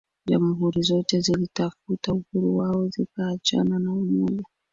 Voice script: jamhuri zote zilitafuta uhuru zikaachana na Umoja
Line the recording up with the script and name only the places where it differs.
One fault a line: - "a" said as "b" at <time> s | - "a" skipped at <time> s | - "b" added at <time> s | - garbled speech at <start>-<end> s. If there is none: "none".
- "wao" added at 2.6 s